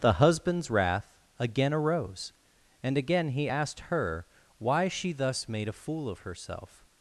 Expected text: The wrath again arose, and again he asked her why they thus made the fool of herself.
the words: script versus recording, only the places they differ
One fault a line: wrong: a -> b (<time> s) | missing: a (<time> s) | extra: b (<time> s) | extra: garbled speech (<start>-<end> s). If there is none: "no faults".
extra: husband's (0.1 s)
wrong: they -> she (4.9 s)
wrong: the -> a (5.7 s)